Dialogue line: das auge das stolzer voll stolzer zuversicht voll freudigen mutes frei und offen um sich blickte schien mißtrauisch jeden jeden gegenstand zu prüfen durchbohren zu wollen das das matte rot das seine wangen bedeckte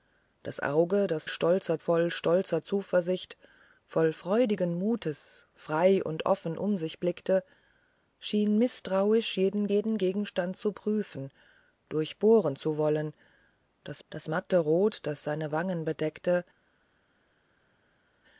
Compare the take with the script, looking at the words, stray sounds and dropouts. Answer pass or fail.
pass